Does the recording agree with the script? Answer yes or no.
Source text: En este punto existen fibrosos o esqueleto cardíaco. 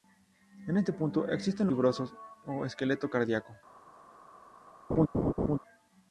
yes